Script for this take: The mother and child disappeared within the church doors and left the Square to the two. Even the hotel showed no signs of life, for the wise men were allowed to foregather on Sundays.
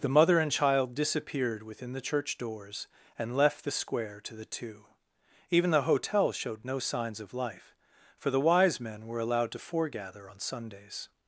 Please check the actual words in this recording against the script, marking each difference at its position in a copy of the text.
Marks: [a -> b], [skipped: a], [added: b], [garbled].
The mother and child disappeared within the church doors and left the Square to the two. Even the hotel showed no signs of life, for the wise men were allowed to foregather on Sundays.